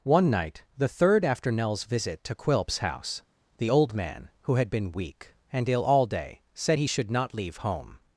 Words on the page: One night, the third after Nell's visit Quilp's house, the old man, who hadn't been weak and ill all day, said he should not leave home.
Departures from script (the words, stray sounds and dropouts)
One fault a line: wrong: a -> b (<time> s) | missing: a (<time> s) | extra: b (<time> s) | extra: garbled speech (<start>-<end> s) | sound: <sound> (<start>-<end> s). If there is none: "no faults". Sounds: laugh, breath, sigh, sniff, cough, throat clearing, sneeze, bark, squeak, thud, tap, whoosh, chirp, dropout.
extra: to (2.2 s)
wrong: hadn't -> had (4.5 s)